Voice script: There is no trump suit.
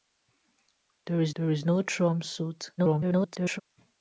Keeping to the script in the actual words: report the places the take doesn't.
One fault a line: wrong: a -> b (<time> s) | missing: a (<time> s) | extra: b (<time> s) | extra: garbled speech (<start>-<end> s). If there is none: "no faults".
extra: there is (1.3 s)
extra: garbled speech (2.8-3.6 s)